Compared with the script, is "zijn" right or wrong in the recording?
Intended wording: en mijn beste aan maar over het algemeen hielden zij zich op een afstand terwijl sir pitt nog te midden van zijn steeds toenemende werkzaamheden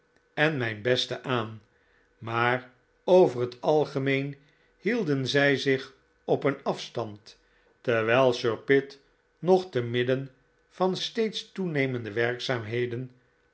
wrong